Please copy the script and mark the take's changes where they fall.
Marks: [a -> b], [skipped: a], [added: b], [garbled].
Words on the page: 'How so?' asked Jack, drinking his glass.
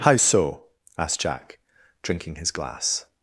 'How so?' asked Jack, drinking his glass.